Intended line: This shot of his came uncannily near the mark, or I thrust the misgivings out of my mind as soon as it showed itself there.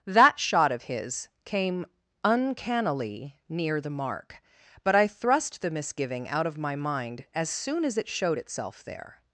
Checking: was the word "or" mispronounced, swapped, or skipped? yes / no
yes